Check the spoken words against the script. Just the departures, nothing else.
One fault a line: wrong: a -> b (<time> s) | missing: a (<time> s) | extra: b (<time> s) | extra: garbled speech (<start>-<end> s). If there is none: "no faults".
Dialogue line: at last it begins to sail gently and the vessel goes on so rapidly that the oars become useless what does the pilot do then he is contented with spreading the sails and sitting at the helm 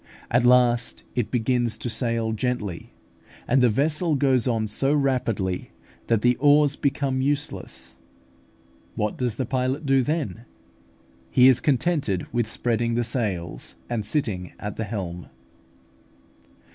no faults